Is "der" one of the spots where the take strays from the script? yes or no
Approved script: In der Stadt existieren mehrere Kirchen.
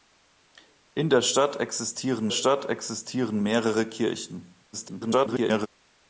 no